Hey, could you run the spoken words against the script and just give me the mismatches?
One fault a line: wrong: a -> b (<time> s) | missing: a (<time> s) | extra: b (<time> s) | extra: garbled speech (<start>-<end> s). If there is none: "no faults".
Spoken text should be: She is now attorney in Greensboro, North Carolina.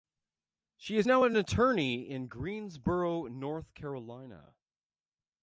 extra: an (1.2 s)